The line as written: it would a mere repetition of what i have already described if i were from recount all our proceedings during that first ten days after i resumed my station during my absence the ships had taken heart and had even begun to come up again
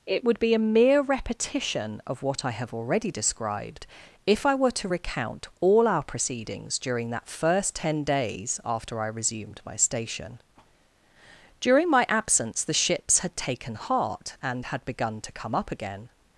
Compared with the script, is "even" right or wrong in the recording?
wrong